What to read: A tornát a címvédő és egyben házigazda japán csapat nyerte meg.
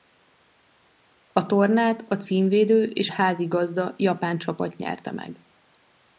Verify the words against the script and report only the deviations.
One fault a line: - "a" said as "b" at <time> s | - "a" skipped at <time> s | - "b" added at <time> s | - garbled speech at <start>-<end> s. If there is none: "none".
- "egyben" skipped at 3.1 s